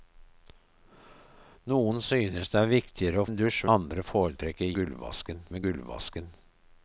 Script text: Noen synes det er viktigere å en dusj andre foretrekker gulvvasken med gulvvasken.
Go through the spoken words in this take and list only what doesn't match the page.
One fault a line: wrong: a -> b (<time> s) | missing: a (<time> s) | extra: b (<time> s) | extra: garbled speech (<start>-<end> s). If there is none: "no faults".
no faults